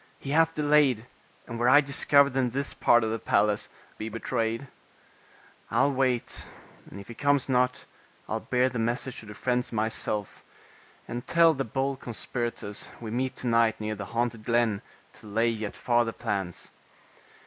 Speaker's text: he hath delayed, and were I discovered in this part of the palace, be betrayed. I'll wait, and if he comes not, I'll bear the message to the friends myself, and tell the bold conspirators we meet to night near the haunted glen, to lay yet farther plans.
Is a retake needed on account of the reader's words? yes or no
no